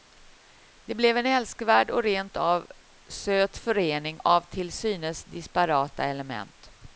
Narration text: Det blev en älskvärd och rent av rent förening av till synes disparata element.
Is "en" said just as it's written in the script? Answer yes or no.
yes